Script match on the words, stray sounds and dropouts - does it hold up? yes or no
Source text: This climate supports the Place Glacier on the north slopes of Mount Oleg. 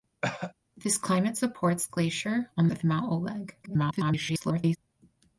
no